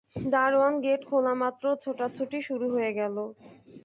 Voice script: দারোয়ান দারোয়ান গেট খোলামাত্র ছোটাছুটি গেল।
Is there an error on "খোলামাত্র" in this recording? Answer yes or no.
no